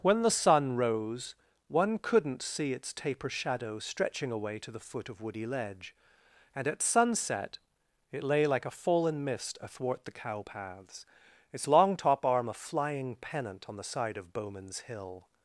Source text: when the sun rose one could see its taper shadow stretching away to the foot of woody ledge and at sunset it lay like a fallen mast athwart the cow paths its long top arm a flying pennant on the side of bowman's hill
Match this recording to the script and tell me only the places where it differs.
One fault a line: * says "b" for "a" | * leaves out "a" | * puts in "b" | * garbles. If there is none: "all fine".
* says "couldn't" for "could"
* says "mist" for "mast"